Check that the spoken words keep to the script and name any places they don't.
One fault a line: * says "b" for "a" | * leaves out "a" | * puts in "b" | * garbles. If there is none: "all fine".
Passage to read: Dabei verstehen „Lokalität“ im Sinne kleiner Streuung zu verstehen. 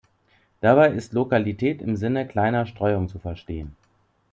* says "ist" for "verstehen"